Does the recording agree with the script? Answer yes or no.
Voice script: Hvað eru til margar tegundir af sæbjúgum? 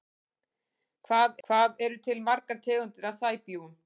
no